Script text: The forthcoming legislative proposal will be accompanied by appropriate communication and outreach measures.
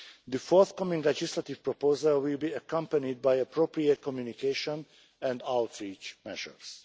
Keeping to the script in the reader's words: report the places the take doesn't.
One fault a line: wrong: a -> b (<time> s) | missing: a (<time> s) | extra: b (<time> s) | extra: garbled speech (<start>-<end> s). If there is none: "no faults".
no faults